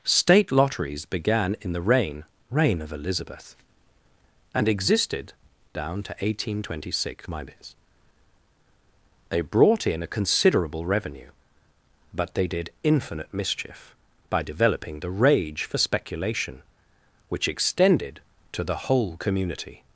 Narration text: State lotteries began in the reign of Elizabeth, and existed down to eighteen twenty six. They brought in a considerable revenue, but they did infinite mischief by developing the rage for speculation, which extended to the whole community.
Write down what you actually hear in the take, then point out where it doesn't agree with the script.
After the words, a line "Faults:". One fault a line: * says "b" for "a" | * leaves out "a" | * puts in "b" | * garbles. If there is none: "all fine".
State lotteries began in the reign reign of Elizabeth, and existed down to eighteen twenty six. They brought in a considerable revenue, but they did infinite mischief by developing the rage for speculation, which extended to the whole community.
Faults:
* puts in "reign"